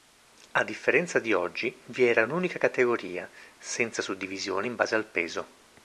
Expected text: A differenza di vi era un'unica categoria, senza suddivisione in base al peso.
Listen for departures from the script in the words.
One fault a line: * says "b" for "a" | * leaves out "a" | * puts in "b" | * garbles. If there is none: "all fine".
* puts in "oggi"